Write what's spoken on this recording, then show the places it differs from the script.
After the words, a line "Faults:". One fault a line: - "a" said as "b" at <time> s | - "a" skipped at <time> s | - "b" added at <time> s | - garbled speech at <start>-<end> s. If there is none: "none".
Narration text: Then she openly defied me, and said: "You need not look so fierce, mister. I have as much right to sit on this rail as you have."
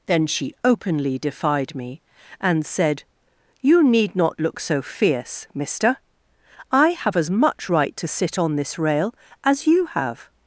Then she openly defied me, and said: "You need not look so fierce, mister. I have as much right to sit on this rail as you have."
Faults:
none